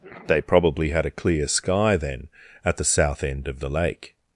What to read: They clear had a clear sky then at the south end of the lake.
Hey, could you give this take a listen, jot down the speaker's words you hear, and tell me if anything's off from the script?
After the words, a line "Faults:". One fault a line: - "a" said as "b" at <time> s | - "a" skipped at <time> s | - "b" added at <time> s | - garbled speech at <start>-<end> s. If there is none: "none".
They probably had a clear sky then at the south end of the lake.
Faults:
- "clear" said as "probably" at 0.4 s